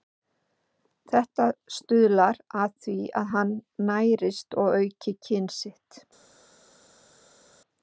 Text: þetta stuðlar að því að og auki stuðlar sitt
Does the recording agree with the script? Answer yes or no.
no